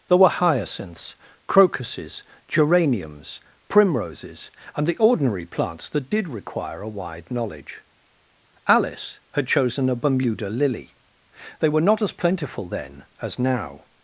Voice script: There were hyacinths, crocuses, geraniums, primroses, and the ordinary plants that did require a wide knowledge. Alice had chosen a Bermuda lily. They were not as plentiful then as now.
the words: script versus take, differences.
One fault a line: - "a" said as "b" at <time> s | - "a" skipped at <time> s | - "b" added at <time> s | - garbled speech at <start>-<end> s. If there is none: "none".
none